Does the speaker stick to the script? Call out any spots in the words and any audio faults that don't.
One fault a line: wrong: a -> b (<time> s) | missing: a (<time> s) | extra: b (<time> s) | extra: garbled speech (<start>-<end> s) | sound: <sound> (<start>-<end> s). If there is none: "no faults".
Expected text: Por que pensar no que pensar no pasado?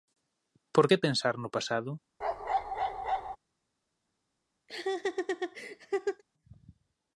missing: que pensar no (1.5 s)
sound: bark (2.2-3.4 s)
sound: laugh (4.7-6.2 s)